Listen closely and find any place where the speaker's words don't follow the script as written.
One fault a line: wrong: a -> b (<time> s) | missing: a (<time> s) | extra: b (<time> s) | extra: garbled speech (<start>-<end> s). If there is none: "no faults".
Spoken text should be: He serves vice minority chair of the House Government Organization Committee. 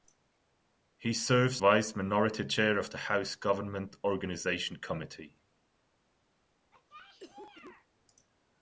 no faults